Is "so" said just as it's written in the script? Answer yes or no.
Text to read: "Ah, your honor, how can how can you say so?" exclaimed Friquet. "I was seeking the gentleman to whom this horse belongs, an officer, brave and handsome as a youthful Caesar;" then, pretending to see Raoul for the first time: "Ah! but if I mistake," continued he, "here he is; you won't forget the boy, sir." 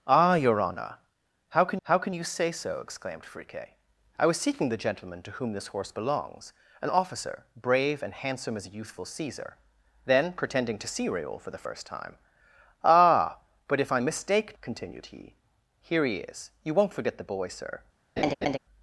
yes